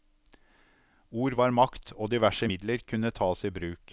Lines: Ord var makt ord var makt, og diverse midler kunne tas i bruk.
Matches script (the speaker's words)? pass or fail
fail